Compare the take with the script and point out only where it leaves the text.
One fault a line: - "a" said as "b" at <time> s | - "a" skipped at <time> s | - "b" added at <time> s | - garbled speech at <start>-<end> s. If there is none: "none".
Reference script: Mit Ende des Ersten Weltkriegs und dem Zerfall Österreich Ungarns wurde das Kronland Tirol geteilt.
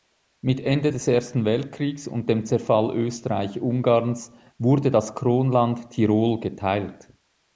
none